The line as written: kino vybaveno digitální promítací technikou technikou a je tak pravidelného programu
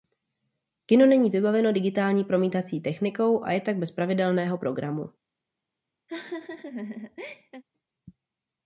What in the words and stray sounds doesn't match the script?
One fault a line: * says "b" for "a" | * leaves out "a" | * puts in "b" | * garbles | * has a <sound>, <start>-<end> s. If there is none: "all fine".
* puts in "není"
* leaves out "technikou"
* puts in "bez"
* has a laugh, 6.1-7.6 s